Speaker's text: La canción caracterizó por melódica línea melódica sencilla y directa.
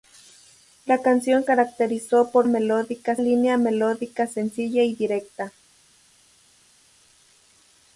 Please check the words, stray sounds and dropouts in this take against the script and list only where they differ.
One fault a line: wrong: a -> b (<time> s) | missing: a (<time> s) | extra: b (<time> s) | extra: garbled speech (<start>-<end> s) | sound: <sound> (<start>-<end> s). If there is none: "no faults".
no faults